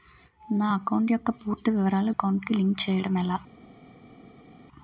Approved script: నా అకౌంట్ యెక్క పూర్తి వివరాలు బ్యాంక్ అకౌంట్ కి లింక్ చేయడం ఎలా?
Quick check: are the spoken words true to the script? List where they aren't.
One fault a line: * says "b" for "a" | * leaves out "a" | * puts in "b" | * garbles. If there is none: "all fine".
* leaves out "బ్యాంక్"